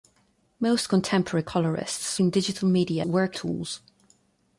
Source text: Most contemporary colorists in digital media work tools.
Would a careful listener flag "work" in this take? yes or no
no